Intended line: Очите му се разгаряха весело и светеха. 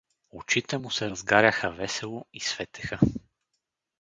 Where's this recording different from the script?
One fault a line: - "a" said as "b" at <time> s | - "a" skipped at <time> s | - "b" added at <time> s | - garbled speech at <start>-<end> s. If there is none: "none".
none